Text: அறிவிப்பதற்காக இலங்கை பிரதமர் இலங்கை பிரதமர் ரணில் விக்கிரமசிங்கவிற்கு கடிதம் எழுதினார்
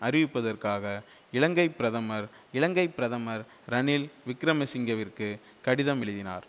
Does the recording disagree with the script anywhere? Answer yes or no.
no